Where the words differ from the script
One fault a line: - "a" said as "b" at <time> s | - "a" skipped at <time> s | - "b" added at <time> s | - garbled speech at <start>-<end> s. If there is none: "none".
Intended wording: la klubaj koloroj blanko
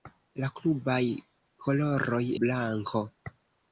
none